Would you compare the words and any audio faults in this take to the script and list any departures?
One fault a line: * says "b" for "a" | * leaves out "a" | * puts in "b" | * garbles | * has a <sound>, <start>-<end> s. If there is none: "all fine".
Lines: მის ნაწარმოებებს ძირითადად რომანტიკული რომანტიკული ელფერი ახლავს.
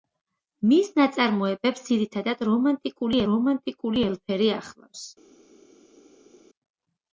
all fine